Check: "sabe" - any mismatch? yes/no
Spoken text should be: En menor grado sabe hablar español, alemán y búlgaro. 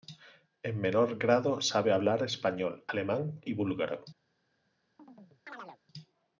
no